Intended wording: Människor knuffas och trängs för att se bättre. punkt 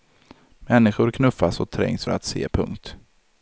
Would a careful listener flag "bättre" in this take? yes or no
yes